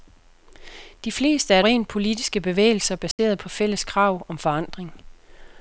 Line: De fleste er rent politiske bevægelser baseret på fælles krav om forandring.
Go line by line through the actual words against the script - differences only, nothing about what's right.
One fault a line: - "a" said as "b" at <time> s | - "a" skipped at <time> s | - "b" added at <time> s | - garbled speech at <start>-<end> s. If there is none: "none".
none